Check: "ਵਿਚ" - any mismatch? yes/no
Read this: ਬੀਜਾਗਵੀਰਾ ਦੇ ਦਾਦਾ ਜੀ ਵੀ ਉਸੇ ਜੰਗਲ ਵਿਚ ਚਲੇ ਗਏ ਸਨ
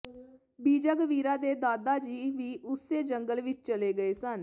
no